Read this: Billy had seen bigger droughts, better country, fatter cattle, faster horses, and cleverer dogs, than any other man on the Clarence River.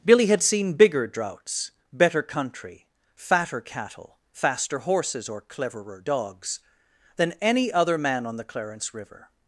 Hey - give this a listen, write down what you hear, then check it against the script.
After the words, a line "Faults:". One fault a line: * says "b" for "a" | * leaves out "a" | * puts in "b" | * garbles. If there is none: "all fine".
Billy had seen bigger droughts, better country, fatter cattle, faster horses, or cleverer dogs, than any other man on the Clarence River.
Faults:
* says "or" for "and"